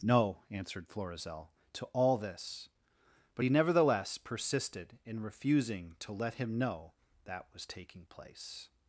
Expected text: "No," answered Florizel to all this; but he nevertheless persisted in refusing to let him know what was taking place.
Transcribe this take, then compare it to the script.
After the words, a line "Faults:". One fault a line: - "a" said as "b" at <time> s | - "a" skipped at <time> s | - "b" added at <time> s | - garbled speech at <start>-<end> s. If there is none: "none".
"No," answered Florizel to all this; but he nevertheless persisted in refusing to let him know that was taking place.
Faults:
- "what" said as "that" at 7.3 s